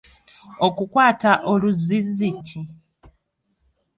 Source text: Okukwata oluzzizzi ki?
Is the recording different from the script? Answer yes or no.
no